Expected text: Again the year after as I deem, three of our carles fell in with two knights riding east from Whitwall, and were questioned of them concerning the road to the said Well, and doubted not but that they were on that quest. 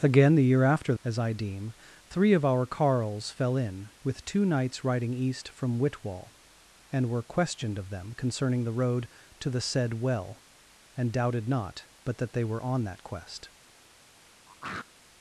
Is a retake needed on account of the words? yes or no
no